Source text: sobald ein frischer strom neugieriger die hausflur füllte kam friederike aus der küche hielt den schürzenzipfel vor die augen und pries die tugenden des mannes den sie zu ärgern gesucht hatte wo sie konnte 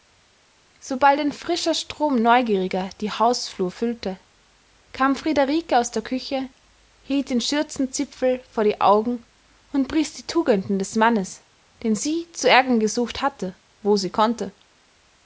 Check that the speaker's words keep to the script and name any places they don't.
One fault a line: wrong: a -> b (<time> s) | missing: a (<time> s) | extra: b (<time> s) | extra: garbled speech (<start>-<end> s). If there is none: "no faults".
no faults